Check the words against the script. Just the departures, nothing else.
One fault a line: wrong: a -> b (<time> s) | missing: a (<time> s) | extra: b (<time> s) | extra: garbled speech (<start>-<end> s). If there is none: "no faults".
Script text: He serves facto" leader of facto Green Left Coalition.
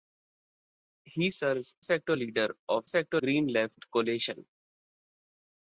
no faults